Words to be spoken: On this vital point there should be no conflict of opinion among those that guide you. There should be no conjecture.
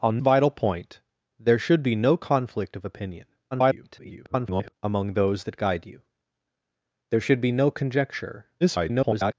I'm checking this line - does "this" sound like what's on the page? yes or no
no